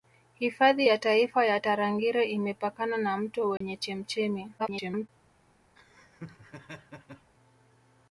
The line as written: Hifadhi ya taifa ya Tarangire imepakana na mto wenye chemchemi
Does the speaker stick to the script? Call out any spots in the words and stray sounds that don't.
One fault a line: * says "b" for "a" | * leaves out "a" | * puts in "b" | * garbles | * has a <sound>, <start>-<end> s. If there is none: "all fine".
* has a dropout, 3.6-3.6 s
* garbles
* has a laugh, 5.8-7.3 s